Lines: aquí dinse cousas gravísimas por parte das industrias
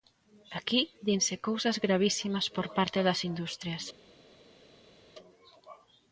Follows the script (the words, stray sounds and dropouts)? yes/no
yes